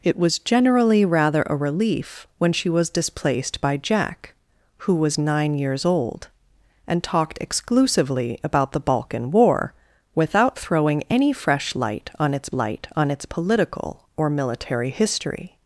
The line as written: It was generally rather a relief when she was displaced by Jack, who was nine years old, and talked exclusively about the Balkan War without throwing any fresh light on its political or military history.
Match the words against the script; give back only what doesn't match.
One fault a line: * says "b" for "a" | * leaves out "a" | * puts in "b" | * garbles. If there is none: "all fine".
* puts in "light on its"